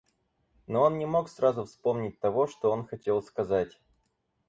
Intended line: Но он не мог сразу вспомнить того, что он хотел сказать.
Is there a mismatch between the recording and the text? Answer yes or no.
no